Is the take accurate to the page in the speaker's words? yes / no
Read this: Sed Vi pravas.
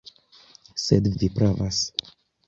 yes